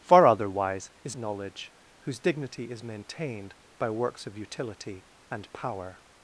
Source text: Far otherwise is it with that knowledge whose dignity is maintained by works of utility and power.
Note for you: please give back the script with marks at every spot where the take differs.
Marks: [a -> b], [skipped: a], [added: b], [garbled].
Far otherwise is [skipped: it with that] knowledge whose dignity is maintained by works of utility and power.